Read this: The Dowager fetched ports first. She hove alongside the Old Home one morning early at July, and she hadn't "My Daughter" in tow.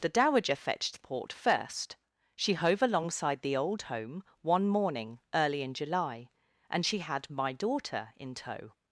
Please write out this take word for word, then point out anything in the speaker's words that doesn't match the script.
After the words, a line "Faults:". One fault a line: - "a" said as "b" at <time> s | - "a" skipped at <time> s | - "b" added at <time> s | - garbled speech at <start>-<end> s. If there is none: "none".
The Dowager fetched port first. She hove alongside the Old Home one morning early in July, and she had "My Daughter" in tow.
Faults:
- "ports" said as "port" at 1.0 s
- "at" said as "in" at 5.6 s
- "hadn't" said as "had" at 7.0 s